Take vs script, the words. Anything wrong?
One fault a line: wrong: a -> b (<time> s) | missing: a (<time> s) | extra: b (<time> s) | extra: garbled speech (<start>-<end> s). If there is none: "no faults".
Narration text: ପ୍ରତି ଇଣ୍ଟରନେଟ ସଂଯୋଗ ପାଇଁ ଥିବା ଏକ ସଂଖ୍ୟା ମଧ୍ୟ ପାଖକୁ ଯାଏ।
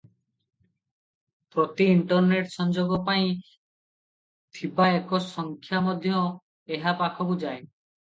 extra: ଏହା (6.7 s)